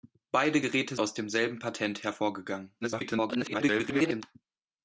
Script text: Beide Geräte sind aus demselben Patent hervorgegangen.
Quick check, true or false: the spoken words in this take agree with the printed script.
false